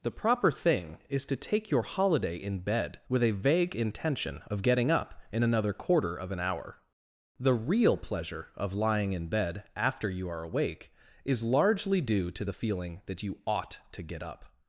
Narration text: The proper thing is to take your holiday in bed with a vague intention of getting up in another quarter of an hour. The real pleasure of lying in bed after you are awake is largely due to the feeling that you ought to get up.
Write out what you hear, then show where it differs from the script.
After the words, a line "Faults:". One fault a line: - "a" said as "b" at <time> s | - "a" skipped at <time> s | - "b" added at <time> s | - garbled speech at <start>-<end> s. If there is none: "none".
The proper thing is to take your holiday in bed with a vague intention of getting up in another quarter of an hour. The real pleasure of lying in bed after you are awake is largely due to the feeling that you ought to get up.
Faults:
none